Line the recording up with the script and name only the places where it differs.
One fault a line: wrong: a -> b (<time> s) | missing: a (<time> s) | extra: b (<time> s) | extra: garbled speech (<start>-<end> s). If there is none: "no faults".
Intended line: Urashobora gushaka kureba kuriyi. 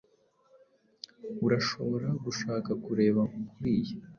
no faults